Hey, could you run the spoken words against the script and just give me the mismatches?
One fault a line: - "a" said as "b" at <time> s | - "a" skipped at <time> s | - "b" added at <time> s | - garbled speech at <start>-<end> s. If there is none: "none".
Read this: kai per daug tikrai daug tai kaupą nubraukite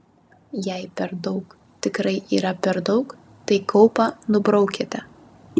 - "kai" said as "jei" at 0.7 s
- "yra per" added at 2.4 s